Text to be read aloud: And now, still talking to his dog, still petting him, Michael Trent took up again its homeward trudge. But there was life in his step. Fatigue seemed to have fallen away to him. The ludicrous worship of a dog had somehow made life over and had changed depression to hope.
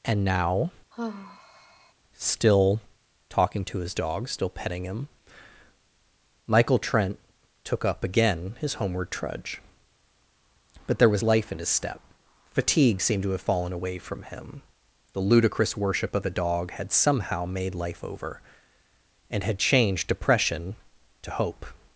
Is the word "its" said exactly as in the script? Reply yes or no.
no